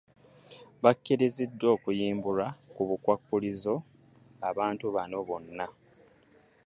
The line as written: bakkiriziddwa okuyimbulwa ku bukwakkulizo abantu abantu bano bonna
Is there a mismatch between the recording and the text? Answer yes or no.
yes